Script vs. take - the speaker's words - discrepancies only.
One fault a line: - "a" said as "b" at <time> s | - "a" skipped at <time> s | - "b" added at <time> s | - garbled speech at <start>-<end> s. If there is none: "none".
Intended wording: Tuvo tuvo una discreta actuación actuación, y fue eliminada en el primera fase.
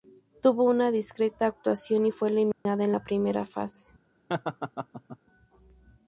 - "tuvo" skipped at 0.6 s
- "actuación" skipped at 2.1 s
- "el" said as "la" at 2.9 s